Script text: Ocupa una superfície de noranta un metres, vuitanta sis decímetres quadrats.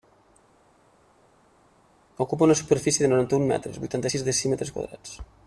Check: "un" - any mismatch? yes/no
no